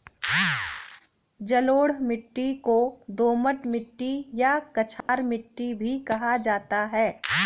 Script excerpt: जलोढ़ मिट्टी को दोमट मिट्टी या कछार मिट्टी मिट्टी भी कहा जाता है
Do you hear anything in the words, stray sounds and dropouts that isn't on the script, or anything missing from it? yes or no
yes